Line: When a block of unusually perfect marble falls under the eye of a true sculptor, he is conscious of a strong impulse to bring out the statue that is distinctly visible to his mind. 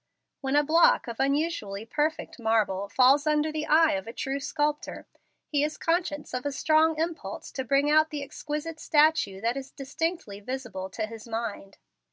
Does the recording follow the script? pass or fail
fail